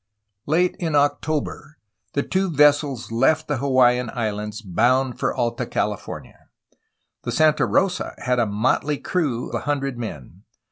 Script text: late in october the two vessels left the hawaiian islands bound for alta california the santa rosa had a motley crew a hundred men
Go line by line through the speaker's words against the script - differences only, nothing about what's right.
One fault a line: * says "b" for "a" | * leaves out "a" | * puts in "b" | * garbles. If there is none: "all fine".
all fine